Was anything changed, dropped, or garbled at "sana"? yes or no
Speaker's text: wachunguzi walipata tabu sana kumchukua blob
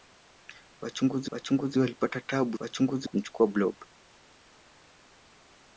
yes